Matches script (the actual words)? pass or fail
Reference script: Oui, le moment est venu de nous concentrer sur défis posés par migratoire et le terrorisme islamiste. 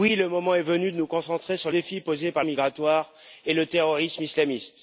pass